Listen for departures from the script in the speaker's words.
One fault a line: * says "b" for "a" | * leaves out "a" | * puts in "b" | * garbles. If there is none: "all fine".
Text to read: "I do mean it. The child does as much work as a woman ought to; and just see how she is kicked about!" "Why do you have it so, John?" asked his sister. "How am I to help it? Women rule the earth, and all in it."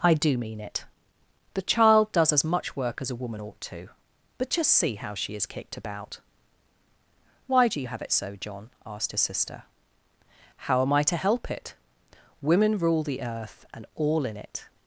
* says "but" for "and"